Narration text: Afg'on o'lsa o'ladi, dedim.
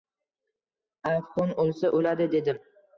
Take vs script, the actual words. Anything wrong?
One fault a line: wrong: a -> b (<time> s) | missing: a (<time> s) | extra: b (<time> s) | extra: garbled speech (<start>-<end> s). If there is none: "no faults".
no faults